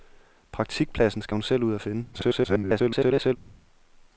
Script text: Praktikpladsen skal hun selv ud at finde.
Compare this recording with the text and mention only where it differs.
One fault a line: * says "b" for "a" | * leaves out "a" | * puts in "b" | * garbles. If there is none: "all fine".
* garbles